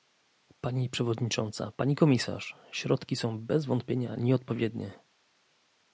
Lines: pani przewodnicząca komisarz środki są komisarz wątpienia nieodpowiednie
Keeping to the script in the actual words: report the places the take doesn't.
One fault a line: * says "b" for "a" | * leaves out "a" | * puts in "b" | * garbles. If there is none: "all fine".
* puts in "pani"
* says "bez" for "komisarz"